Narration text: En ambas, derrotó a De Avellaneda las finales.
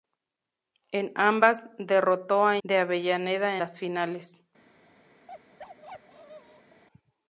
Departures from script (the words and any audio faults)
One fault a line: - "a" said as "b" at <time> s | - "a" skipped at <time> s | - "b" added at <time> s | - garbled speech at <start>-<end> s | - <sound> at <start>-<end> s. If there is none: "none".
- bark at 5.3-6.8 s